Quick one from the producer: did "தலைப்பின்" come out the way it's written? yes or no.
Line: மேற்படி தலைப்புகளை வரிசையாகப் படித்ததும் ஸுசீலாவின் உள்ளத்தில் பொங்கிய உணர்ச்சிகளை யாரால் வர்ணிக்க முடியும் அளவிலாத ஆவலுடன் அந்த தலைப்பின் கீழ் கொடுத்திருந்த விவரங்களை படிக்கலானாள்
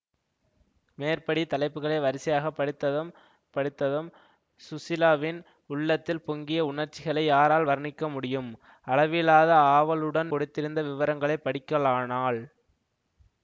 no